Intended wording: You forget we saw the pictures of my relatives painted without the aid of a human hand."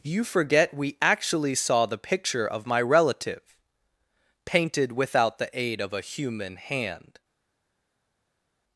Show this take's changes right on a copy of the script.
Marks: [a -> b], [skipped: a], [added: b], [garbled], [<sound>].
You forget we [added: actually] saw the [pictures -> picture] of my [relatives -> relative] painted without the aid of a human hand."